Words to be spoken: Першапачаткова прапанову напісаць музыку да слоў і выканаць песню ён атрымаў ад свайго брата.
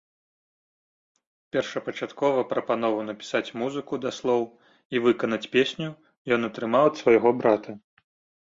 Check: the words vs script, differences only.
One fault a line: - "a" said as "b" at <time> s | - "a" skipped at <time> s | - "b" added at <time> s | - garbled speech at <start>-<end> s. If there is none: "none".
none